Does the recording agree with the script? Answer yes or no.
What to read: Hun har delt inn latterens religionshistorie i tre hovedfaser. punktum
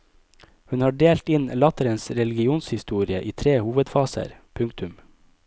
yes